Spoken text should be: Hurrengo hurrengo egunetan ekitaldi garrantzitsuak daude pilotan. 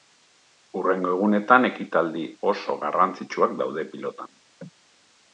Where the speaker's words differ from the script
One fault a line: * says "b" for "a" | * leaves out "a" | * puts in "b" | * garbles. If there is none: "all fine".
* leaves out "hurrengo"
* puts in "oso"